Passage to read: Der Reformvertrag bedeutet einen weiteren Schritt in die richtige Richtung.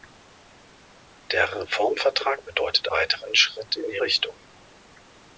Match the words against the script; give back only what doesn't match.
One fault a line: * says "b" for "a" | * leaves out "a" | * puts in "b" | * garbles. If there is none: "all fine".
* leaves out "einen"
* leaves out "richtige"